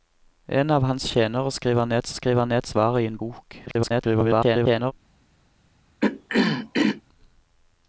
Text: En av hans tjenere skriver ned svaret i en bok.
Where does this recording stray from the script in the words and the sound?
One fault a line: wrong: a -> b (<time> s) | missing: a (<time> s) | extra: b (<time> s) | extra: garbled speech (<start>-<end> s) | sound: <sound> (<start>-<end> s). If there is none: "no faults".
extra: skriver ned (2.1 s)
extra: garbled speech (3.7-4.9 s)
sound: throat clearing (6.0-7.0 s)